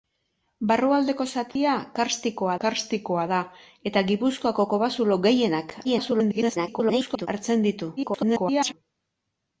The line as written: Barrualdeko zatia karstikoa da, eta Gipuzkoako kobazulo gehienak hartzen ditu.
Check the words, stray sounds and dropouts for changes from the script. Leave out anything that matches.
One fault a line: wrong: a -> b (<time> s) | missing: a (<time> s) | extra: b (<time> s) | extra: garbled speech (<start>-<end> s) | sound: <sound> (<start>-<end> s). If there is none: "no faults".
sound: dropout (1.5-1.6 s)
extra: karstikoa (2.6 s)
extra: garbled speech (5.8-7.3 s)
extra: garbled speech (8.0-8.7 s)